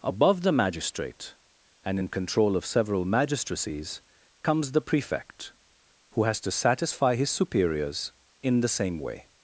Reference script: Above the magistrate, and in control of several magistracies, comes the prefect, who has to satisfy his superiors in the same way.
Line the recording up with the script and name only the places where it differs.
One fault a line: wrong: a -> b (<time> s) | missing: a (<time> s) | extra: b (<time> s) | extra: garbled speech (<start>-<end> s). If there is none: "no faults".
no faults